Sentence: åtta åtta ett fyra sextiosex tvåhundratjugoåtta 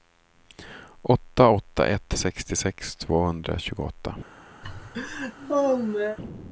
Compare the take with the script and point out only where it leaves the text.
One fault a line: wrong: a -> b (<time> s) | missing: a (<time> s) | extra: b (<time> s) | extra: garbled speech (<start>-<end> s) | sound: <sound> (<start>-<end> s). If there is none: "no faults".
missing: fyra (2.1 s)
sound: laugh (4.6-6.2 s)